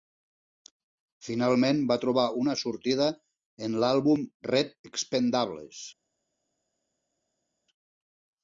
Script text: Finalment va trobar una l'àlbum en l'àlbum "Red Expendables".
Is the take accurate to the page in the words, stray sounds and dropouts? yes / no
no